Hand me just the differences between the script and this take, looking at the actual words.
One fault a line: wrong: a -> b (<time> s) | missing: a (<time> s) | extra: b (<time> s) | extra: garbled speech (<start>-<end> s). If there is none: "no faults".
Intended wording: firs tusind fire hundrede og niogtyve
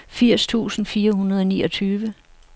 no faults